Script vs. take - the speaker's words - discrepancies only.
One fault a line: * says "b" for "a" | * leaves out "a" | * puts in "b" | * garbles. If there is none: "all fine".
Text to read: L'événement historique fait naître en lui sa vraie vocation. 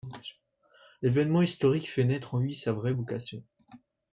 all fine